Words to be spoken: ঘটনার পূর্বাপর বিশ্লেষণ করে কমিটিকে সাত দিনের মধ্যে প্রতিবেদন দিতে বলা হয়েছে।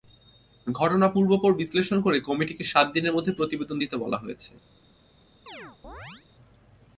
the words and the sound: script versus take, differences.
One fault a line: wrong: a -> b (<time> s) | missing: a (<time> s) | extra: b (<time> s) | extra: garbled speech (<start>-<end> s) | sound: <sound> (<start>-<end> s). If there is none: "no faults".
sound: chirp (5.5-6.3 s)